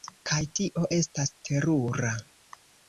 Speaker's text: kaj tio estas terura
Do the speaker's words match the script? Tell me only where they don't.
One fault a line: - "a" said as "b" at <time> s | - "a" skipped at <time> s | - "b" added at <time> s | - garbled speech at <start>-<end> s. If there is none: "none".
none